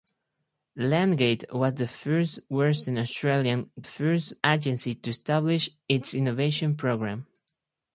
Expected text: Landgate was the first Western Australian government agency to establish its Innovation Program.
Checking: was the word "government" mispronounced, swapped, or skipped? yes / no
yes